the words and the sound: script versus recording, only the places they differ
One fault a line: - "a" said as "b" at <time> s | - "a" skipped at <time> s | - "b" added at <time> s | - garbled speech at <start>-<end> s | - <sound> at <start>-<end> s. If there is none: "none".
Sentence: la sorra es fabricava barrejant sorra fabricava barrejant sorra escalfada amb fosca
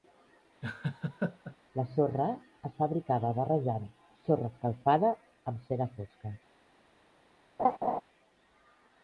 - laugh at 0.6-1.6 s
- "fabricava barrejant sorra" skipped at 4.5 s
- "cera" added at 5.7 s
- laugh at 7.6-8.0 s